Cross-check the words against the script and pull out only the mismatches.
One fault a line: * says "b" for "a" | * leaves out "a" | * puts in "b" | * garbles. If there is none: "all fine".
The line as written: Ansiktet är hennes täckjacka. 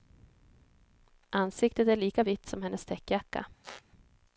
* puts in "lika vitt som"